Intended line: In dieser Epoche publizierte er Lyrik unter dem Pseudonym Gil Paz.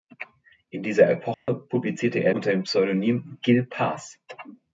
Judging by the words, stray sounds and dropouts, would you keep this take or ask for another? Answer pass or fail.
fail